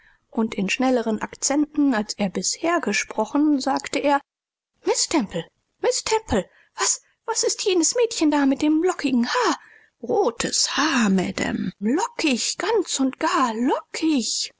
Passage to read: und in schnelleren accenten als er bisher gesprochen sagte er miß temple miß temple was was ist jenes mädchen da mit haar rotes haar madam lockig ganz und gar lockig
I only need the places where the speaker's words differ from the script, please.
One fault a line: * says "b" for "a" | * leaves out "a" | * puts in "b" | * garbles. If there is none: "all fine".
* puts in "dem lockigen"